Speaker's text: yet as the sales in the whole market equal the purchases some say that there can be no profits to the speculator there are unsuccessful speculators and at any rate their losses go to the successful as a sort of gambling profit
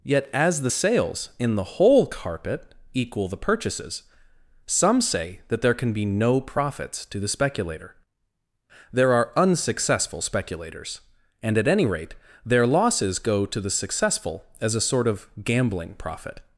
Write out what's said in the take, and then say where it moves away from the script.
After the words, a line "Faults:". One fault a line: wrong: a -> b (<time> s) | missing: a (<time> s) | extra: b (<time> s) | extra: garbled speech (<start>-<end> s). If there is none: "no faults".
yet as the sales in the whole carpet equal the purchases some say that there can be no profits to the speculator there are unsuccessful speculators and at any rate their losses go to the successful as a sort of gambling profit
Faults:
wrong: market -> carpet (2.1 s)